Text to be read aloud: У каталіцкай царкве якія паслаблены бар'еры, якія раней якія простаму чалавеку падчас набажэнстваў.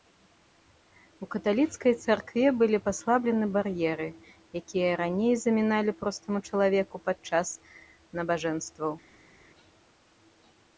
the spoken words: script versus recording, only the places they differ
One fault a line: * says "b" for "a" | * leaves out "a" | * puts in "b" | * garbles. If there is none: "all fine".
* says "былі" for "якія"
* says "заміналі" for "якія"